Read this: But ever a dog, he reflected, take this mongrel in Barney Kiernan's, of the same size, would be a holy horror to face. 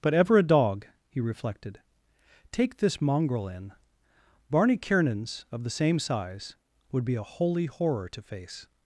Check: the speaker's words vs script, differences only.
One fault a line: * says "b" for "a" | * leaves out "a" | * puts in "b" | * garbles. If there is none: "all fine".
all fine